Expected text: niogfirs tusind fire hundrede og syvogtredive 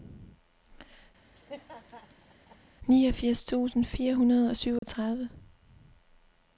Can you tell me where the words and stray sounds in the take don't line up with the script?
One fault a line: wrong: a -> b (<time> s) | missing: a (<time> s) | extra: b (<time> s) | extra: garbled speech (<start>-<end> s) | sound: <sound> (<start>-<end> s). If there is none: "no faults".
sound: laugh (1.4-2.6 s)
sound: dropout (4.8-4.8 s)